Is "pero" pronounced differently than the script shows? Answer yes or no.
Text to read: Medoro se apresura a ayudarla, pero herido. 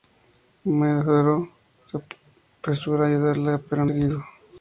no